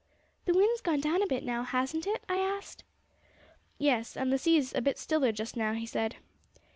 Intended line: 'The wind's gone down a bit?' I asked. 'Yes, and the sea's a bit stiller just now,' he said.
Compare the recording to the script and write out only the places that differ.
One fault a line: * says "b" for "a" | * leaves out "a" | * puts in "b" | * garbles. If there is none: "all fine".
* puts in "now hasn't it"